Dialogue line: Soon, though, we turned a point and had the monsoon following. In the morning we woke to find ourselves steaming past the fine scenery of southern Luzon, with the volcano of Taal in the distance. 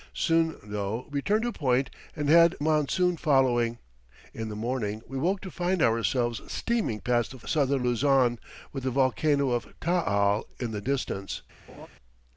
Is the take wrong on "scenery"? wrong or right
wrong